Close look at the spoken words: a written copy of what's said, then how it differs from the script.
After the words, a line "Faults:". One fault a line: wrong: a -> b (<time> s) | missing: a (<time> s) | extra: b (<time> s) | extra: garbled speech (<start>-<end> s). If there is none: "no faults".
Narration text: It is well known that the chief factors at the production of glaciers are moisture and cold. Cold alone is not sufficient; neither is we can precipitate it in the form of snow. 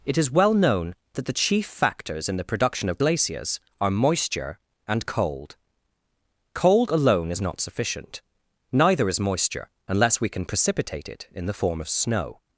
It is well known that the chief factors in the production of glaciers are moisture and cold. Cold alone is not sufficient; neither is moisture, unless we can precipitate it in the form of snow.
Faults:
wrong: at -> in (2.3 s)
extra: moisture unless (9.2 s)